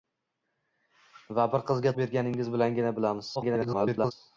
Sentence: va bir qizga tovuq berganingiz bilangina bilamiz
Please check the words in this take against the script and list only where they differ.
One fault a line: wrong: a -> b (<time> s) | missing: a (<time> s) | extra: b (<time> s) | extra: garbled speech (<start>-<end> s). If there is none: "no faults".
missing: tovuq (1.9 s)
extra: garbled speech (3.4-4.1 s)